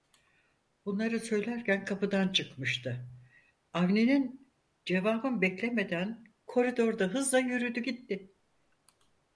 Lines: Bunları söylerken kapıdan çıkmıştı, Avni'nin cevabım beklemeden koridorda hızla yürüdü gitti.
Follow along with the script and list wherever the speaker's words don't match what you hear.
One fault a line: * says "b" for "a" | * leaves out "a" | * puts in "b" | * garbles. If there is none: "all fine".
all fine